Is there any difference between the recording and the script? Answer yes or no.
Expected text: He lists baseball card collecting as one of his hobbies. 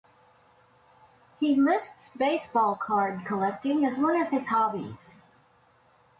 no